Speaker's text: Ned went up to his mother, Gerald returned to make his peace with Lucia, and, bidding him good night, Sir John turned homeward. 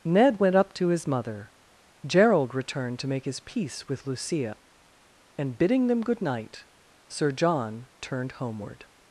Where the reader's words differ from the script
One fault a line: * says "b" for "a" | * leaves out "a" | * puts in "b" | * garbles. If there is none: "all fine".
* says "them" for "him"